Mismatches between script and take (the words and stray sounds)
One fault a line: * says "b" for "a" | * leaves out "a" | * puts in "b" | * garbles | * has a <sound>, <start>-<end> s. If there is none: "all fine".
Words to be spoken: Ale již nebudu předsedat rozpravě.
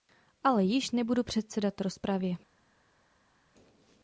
all fine